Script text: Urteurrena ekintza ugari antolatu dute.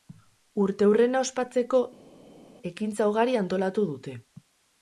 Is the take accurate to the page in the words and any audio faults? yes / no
no